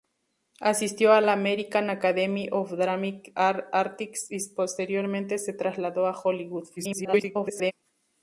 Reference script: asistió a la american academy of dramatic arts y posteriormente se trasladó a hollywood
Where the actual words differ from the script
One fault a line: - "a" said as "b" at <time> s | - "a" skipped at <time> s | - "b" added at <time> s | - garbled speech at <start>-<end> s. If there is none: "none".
- garbled speech at 6.8-7.7 s